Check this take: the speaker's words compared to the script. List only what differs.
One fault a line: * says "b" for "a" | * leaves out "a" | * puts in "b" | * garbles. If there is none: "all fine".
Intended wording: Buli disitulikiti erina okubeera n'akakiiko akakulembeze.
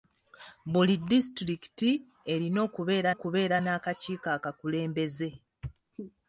* puts in "okubeera"